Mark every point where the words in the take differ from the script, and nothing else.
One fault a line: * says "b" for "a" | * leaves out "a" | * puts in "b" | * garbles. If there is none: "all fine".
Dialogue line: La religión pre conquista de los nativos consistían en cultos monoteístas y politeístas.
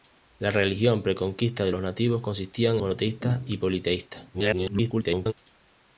* leaves out "en cultos"
* garbles